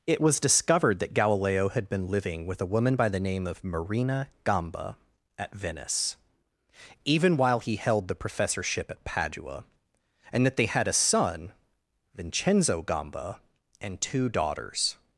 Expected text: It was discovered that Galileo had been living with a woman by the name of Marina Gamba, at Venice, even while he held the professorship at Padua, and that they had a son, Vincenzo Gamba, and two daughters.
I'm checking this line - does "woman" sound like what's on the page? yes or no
yes